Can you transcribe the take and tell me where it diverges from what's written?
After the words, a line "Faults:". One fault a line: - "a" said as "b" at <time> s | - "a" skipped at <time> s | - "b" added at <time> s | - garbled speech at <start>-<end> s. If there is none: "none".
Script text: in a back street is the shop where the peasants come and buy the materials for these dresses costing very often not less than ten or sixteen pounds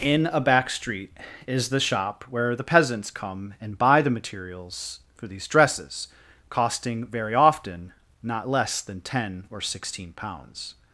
in a back street is the shop where the peasants come and buy the materials for these dresses costing very often not less than ten or sixteen pounds
Faults:
none